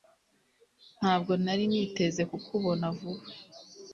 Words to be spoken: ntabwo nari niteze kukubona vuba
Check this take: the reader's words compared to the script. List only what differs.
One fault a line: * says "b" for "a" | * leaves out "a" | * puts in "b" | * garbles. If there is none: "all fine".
all fine